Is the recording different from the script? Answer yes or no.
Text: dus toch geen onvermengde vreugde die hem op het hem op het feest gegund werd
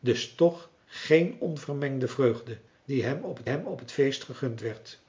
no